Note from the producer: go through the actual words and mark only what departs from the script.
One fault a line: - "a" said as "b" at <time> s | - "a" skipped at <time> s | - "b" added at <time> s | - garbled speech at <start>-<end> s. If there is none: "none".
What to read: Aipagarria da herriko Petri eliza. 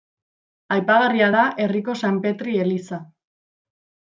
- "San" added at 2.0 s